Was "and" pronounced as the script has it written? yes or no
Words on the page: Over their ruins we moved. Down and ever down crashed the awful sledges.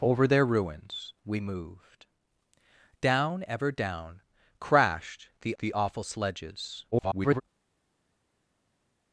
no